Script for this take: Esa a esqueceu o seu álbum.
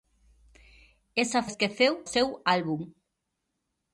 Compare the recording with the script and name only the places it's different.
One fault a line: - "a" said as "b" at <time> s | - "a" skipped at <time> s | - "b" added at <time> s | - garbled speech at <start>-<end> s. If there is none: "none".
none